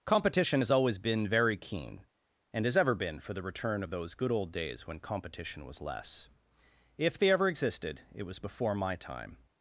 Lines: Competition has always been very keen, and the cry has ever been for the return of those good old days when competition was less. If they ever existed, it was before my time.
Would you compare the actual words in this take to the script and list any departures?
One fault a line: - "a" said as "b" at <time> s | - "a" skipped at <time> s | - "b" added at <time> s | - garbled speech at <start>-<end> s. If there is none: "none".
- "the cry" skipped at 2.6 s